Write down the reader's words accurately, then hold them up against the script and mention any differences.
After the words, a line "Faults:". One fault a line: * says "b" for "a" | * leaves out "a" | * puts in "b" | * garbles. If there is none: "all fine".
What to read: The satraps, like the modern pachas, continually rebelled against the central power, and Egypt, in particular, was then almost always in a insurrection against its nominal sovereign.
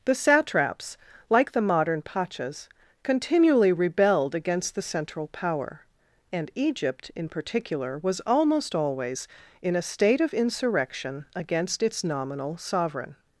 The satraps, like the modern pachas, continually rebelled against the central power, and Egypt, in particular, was almost always in a state of insurrection against its nominal sovereign.
Faults:
* leaves out "then"
* puts in "state of"